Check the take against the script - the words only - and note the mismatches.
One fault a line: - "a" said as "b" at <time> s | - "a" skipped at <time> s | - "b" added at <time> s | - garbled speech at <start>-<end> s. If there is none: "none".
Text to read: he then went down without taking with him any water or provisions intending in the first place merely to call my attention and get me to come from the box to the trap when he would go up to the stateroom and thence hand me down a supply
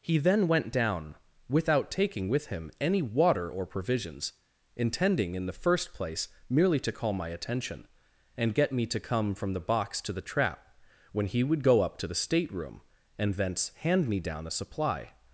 none